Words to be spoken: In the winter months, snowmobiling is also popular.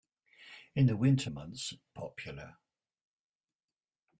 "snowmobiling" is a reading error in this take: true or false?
true